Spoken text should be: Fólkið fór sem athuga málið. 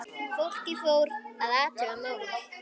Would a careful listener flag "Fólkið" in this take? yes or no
no